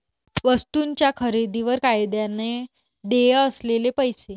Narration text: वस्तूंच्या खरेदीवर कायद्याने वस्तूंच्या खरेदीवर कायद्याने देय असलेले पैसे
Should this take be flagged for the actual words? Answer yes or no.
yes